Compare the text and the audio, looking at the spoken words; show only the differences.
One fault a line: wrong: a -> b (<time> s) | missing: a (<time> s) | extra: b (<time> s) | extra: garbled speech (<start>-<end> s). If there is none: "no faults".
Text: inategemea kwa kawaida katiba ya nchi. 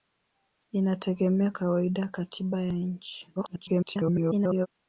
missing: kwa (1.5 s)
extra: garbled speech (3.4-4.7 s)